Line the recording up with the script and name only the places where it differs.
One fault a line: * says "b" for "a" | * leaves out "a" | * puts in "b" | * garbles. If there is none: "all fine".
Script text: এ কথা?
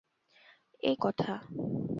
all fine